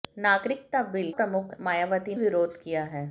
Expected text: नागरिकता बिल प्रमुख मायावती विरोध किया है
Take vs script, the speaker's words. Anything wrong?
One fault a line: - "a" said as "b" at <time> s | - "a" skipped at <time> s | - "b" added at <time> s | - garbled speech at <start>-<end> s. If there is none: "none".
none